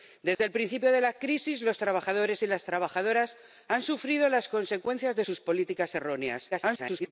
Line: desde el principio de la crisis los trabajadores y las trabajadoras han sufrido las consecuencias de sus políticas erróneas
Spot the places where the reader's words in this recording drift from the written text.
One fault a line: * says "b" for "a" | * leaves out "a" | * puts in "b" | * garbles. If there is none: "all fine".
* garbles